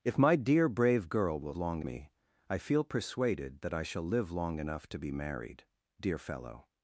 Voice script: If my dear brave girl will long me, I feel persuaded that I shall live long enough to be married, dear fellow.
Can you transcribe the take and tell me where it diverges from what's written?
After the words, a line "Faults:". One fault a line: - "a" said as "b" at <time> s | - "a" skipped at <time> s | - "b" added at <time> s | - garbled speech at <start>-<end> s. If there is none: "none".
If my dear brave girl will long me, I feel persuaded that I shall live long enough to be married, dear fellow.
Faults:
none